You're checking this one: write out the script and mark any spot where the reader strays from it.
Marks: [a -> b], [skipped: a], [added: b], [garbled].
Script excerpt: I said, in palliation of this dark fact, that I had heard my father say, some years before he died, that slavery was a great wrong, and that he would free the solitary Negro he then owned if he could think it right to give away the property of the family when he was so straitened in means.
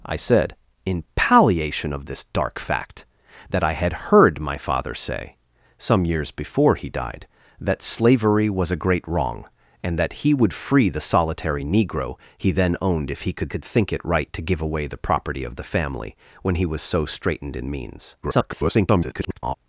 I said, in palliation of this dark fact, that I had heard my father say, some years before he died, that slavery was a great wrong, and that he would free the solitary Negro he then owned if he could [added: could] think it right to give away the property of the family when he was so straitened in means. [garbled]